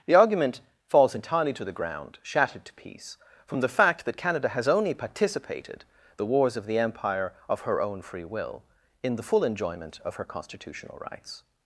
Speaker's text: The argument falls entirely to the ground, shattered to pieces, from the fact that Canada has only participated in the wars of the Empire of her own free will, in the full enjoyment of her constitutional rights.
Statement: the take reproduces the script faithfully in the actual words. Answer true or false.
false